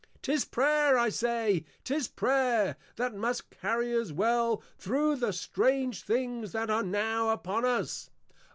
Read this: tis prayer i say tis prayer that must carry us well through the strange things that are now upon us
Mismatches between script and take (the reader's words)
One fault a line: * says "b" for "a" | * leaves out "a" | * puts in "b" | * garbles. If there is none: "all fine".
all fine